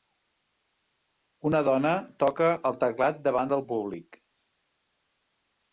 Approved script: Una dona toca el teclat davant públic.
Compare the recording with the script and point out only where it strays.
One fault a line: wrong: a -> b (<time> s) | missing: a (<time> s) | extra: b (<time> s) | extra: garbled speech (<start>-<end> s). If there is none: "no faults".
extra: del (3.6 s)